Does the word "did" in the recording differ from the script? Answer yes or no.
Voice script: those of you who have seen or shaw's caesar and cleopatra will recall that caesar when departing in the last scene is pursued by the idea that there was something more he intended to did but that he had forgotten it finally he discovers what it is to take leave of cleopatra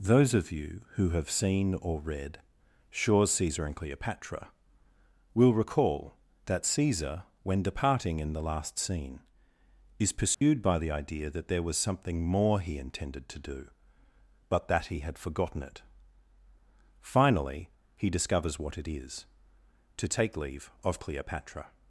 yes